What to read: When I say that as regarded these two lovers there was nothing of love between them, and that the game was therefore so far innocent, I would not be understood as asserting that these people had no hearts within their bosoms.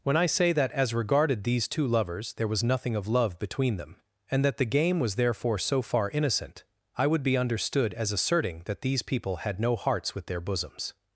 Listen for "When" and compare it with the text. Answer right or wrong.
right